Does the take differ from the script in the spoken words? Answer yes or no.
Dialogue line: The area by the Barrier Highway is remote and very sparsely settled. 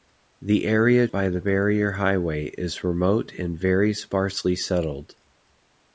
no